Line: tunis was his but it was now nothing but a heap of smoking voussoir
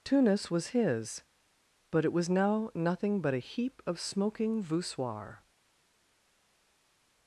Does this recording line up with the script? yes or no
yes